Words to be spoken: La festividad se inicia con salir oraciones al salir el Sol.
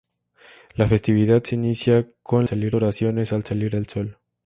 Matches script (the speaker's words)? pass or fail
pass